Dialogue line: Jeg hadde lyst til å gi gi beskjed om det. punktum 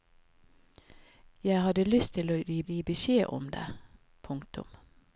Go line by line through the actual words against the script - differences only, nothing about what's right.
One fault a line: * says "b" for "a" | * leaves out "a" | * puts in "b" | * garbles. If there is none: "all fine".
all fine